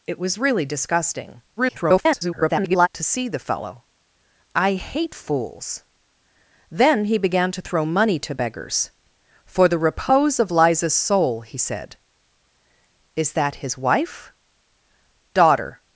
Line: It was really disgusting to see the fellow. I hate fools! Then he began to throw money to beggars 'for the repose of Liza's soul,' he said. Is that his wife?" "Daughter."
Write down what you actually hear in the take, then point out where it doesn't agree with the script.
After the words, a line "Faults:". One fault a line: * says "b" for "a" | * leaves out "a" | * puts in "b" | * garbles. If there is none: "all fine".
It was really disgusting [garbled] to see the fellow. I hate fools! Then he began to throw money to beggars 'for the repose of Liza's soul,' he said. Is that his wife?" "Daughter."
Faults:
* garbles